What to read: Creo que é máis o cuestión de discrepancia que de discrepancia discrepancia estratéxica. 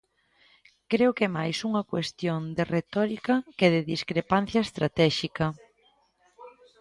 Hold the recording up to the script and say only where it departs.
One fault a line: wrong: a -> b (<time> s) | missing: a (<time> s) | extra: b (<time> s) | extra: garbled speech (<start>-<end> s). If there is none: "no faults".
wrong: o -> unha (1.7 s)
wrong: discrepancia -> retórica (2.8 s)
missing: discrepancia (4.6 s)